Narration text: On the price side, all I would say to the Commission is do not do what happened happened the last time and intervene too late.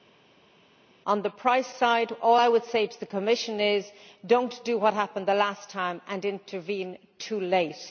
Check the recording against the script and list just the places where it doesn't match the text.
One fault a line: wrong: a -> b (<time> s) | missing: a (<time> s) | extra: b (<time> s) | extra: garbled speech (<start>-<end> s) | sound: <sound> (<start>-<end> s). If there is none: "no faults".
missing: happened (5.3 s)